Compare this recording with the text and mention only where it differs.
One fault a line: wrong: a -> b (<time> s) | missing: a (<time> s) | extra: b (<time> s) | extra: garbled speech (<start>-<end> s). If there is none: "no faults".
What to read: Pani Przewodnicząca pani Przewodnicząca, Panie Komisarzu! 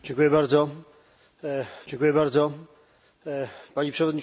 no faults